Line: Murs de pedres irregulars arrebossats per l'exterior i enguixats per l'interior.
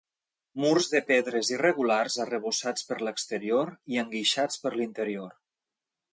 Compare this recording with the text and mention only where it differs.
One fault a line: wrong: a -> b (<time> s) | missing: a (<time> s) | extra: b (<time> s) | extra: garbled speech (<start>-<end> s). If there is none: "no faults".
no faults